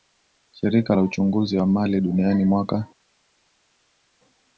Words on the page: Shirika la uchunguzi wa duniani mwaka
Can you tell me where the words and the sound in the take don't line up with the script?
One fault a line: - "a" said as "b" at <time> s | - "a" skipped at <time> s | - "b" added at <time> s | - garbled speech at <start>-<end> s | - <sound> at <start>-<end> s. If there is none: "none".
- "mali" added at 1.7 s